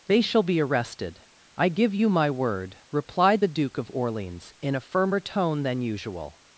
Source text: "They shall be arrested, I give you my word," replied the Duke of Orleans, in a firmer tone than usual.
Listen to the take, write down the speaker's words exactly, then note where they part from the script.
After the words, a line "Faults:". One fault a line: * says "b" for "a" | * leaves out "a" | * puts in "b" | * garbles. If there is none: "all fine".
"They shall be arrested, I give you my word," replied the Duke of Orleans, in a firmer tone than usual.
Faults:
all fine